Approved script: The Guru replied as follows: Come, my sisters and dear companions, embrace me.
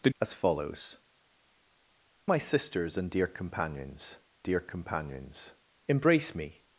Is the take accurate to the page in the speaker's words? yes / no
no